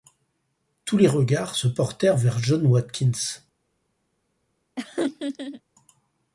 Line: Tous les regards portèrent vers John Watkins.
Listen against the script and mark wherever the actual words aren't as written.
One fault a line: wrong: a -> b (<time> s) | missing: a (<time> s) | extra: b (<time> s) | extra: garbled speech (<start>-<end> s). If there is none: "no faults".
extra: se (1.5 s)